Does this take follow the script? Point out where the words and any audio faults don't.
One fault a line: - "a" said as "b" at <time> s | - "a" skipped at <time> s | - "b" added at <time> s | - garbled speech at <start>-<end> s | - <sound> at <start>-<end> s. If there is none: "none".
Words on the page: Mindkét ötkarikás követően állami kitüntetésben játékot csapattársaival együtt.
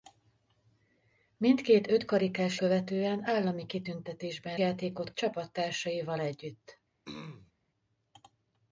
- throat clearing at 7.1-7.5 s